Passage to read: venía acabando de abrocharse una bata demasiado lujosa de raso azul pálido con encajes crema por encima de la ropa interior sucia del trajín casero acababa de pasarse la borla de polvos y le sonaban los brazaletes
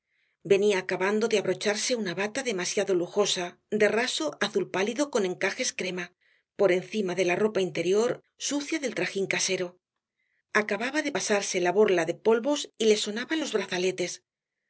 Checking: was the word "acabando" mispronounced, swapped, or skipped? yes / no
no